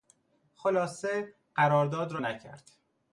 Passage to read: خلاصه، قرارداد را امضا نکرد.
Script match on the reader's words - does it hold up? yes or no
no